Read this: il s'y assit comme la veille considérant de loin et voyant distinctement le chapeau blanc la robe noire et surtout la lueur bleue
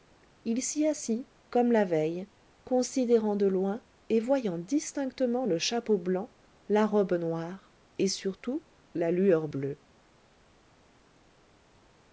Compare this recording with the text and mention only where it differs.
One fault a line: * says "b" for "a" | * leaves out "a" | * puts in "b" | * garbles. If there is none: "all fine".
all fine